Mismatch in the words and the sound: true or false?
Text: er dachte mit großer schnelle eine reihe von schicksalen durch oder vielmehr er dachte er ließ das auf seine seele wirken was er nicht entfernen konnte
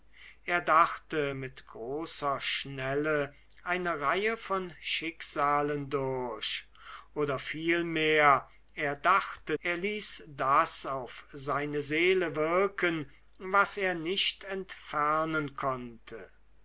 false